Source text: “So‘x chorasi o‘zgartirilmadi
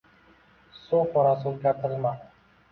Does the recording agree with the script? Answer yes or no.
yes